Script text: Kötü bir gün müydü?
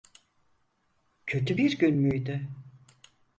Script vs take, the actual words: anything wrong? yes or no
no